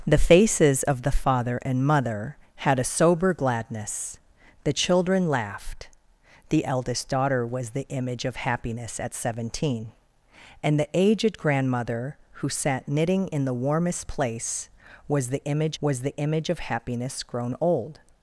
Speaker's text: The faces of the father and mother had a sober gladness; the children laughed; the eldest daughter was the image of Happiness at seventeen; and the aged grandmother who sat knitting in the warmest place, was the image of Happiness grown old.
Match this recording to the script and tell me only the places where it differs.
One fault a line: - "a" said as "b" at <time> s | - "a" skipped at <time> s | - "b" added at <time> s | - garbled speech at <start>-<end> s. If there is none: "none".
- "was the image" added at 15.8 s